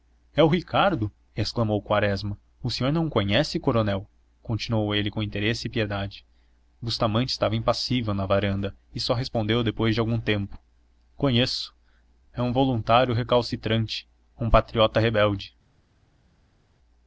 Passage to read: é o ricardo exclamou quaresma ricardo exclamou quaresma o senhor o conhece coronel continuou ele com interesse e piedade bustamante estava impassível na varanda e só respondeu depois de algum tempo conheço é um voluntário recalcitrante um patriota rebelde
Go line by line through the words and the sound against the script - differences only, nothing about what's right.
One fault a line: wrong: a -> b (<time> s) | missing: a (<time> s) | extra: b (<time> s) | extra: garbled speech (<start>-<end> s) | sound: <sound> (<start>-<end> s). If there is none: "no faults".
missing: ricardo exclamou quaresma (2.4 s)
extra: não (2.9 s)